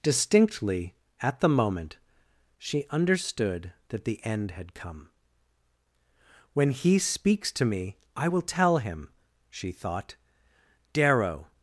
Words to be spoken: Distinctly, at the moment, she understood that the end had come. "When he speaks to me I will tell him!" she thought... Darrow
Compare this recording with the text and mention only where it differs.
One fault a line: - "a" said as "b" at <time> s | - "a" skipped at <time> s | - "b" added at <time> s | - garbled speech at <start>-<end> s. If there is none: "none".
none